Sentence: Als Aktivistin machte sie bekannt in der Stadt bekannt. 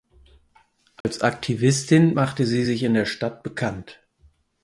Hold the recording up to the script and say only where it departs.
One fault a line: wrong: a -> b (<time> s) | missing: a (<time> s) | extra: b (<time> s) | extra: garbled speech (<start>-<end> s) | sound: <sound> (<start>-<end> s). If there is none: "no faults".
sound: dropout (1.0-1.0 s)
wrong: bekannt -> sich (2.6 s)